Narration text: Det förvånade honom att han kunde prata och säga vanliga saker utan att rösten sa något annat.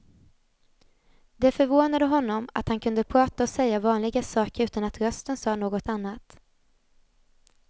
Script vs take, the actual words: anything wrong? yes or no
no